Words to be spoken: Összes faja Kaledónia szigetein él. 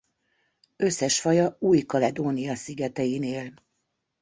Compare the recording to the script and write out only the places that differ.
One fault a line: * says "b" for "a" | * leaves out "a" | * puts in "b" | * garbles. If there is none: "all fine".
* puts in "Új"